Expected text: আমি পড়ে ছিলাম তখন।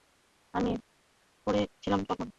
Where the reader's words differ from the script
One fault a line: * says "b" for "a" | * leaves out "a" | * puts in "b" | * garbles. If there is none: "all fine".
all fine